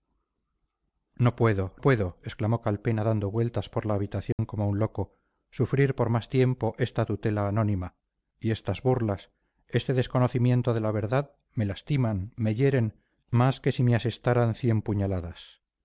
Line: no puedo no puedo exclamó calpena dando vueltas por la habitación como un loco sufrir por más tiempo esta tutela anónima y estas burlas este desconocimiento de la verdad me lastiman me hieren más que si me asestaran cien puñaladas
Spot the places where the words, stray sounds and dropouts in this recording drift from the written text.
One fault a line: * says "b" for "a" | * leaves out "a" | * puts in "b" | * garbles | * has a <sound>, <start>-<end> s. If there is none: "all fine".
* leaves out "no"
* has a dropout, 4.3-4.4 s